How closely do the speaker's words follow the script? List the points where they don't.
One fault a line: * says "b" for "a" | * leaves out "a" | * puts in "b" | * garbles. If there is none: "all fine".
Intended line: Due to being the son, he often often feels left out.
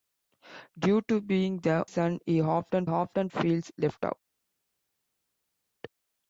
all fine